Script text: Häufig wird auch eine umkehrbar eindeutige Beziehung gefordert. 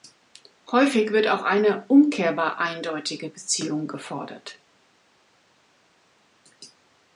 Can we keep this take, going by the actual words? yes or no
yes